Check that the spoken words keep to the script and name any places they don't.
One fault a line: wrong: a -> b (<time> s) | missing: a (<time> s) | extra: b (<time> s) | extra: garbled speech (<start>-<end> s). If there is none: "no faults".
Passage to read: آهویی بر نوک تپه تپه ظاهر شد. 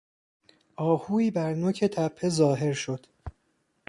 missing: تپه (2.3 s)